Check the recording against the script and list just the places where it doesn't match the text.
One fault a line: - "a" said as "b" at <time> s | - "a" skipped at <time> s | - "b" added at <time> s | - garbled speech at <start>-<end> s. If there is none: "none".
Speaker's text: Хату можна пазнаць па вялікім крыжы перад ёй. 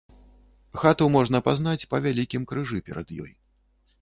none